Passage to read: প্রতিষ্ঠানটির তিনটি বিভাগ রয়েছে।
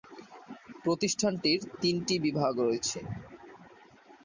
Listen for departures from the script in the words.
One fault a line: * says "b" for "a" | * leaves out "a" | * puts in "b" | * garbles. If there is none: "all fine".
all fine